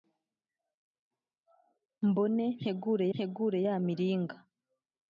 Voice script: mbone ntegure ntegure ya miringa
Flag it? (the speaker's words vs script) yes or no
no